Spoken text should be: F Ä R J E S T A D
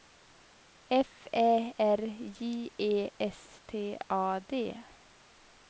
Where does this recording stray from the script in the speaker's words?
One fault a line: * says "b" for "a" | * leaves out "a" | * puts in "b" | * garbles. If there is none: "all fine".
all fine